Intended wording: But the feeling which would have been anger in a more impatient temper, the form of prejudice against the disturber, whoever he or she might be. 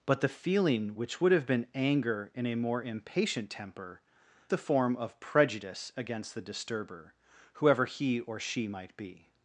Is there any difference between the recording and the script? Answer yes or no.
no